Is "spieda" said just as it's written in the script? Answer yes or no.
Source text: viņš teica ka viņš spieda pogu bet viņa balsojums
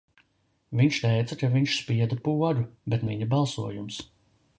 yes